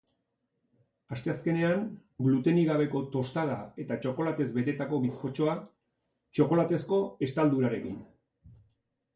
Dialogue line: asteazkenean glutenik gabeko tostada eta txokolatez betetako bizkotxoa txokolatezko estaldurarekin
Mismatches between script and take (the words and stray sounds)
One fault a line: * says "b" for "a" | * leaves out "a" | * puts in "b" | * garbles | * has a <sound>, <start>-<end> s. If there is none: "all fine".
all fine